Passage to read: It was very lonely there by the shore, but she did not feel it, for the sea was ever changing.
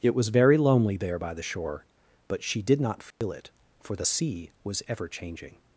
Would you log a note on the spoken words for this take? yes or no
no